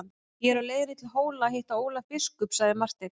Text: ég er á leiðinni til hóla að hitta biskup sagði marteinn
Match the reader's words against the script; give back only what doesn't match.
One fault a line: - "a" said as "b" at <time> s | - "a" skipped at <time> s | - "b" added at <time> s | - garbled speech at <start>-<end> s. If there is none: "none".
- "ólaf" added at 1.9 s